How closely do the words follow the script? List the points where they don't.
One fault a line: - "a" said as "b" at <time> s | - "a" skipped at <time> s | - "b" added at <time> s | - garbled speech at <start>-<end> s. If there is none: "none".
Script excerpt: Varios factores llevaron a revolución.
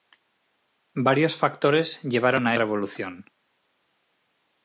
none